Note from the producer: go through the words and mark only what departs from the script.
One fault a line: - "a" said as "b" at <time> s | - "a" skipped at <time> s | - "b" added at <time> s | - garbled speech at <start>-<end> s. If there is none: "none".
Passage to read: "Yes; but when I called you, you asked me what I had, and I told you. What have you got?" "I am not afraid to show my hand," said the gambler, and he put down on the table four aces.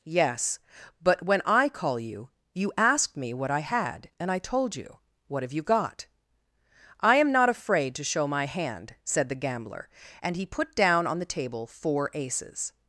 - "called" said as "call" at 1.7 s